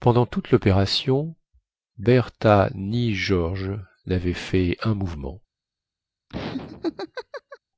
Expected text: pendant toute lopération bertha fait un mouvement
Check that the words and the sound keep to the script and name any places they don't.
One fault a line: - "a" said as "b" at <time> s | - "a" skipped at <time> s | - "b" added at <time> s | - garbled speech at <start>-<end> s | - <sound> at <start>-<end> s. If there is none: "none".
- "ni george navaient" added at 2.7 s
- laugh at 6.3-7.6 s